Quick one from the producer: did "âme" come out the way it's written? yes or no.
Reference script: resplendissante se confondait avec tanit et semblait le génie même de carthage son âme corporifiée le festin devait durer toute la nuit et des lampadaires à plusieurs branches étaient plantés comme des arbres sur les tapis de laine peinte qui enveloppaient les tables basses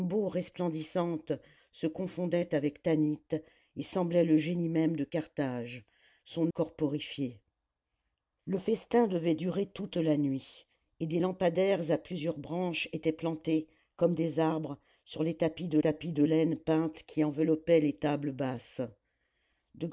no